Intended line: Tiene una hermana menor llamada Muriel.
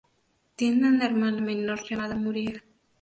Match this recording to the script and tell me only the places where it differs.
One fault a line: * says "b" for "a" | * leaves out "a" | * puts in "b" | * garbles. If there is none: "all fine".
all fine